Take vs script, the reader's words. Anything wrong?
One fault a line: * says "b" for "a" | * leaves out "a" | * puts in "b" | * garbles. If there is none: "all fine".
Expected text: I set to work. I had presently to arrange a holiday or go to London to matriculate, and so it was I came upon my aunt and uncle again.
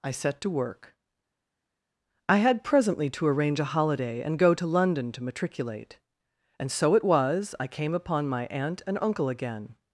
* says "and" for "or"